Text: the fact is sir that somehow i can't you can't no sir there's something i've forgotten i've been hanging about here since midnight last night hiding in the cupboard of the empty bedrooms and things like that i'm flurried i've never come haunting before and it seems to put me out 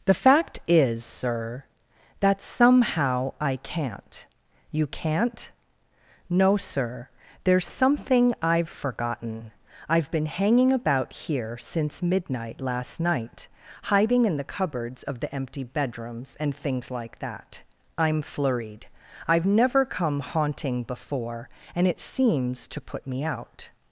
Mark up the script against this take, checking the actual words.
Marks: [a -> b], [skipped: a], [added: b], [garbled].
the fact is sir that somehow i can't you can't no sir there's something i've forgotten i've been hanging about here since midnight last night hiding in the [cupboard -> cupboards] of the empty bedrooms and things like that i'm flurried i've never come haunting before and it seems to put me out